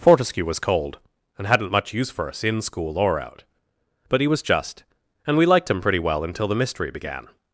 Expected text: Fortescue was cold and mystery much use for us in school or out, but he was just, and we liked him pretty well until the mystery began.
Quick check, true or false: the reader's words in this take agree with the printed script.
false